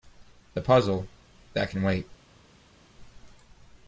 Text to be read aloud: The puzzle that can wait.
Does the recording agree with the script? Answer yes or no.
yes